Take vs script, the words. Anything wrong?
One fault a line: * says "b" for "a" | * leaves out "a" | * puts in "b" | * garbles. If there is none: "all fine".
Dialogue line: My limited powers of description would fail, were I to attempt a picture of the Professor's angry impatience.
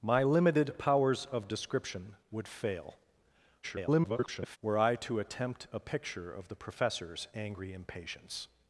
* garbles